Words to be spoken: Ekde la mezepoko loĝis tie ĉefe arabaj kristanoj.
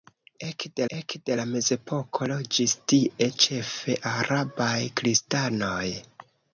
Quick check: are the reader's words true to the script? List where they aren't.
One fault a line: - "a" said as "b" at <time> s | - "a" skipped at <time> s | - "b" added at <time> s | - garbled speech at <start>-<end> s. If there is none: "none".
- "ekde" added at 0.9 s